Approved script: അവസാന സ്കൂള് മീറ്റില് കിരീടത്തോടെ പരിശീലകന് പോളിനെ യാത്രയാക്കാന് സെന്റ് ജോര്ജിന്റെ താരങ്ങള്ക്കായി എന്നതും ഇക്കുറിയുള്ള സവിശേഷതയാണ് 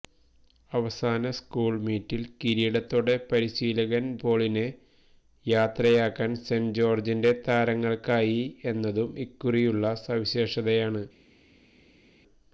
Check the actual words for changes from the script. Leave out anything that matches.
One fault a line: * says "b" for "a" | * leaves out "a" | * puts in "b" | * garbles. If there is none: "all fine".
all fine